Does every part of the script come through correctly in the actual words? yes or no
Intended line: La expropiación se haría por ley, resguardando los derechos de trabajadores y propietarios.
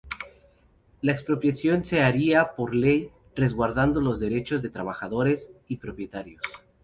yes